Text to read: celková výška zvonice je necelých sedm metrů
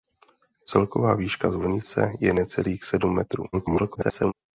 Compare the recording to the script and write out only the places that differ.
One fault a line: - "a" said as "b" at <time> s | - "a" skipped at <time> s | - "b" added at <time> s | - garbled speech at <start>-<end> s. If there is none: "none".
- garbled speech at 3.5-4.3 s